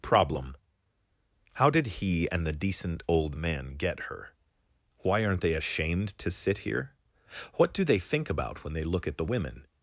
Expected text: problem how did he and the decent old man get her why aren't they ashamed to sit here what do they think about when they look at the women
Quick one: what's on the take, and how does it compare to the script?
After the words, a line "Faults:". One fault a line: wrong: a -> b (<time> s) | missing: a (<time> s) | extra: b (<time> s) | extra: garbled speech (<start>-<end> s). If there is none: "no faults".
problem how did he and the decent old man get her why aren't they ashamed to sit here what do they think about when they look at the women
Faults:
no faults